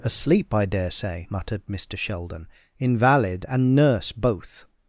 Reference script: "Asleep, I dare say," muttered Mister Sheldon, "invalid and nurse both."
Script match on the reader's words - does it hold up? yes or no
yes